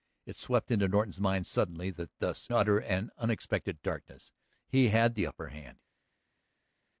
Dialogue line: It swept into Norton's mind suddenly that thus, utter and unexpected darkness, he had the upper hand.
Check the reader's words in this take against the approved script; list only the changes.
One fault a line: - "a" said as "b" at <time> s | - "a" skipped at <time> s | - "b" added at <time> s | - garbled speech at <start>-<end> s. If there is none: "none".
none